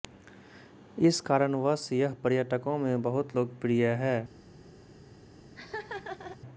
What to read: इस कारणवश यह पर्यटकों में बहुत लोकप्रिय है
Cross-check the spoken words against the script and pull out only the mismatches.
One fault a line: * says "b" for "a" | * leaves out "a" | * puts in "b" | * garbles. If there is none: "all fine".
all fine